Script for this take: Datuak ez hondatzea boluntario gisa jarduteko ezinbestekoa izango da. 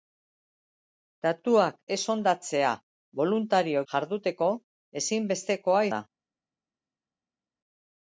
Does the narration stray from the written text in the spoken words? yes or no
yes